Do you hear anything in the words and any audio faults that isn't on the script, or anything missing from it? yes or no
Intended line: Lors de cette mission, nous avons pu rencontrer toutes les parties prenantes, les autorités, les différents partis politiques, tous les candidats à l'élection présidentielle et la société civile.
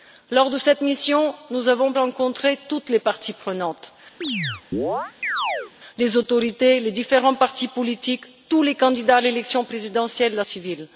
yes